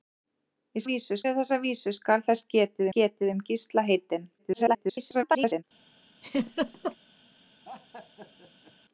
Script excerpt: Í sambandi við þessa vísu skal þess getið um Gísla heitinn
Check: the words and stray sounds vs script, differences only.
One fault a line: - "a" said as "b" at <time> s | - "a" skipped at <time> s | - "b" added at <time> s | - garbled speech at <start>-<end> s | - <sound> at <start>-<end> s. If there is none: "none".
- "sambandi" said as "vísu" at 0.9 s
- "getið" added at 3.0 s
- garbled speech at 4.4-5.6 s
- laugh at 6.2-7.0 s
- laugh at 7.6-8.7 s